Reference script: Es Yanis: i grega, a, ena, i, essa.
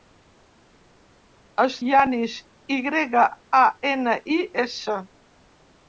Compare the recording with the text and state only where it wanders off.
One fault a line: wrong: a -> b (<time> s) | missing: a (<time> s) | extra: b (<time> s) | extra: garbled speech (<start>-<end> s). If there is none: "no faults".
no faults